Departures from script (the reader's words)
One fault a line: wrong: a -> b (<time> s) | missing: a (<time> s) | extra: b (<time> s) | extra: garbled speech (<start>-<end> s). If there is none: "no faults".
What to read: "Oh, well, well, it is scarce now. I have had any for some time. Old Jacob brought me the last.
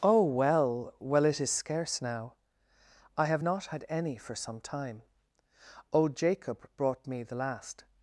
extra: not (3.4 s)